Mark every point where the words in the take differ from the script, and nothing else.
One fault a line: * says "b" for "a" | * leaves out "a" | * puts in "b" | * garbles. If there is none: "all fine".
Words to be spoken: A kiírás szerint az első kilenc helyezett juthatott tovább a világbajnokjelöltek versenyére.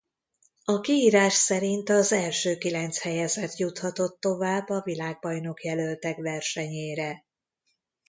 all fine